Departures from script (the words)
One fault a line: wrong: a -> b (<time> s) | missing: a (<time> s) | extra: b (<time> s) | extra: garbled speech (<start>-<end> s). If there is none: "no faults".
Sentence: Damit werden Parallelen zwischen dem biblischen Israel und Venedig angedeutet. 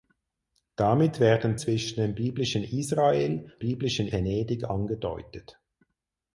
missing: Parallelen (1.6 s)
wrong: und -> biblischen (3.6 s)